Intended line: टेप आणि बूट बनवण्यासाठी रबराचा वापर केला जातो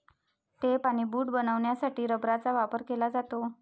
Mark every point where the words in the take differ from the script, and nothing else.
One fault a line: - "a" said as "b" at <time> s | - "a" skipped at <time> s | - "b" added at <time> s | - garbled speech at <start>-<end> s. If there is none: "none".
none